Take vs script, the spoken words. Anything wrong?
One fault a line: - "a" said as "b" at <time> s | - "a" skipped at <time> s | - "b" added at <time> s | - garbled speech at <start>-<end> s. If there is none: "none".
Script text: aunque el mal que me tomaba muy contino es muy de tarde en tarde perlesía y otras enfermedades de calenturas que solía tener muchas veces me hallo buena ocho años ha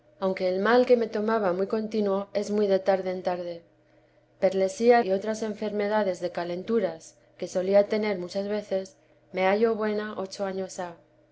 none